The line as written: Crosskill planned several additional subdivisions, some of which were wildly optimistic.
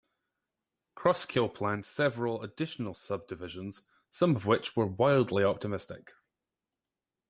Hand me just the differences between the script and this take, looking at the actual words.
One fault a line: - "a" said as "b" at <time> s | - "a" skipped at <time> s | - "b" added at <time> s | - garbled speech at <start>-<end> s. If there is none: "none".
none